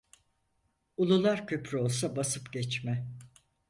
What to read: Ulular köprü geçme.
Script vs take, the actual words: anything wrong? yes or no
yes